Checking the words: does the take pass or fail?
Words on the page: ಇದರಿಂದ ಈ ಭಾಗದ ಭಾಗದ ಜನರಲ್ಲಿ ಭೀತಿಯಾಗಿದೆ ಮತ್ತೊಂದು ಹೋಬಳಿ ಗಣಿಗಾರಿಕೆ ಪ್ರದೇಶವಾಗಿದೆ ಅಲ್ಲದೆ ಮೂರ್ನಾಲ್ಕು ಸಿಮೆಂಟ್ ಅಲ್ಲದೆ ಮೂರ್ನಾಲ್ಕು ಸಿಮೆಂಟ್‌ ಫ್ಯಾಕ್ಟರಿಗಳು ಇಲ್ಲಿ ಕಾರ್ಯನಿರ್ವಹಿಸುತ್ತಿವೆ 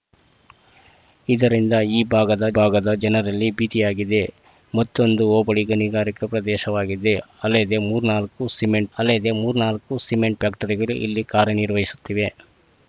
pass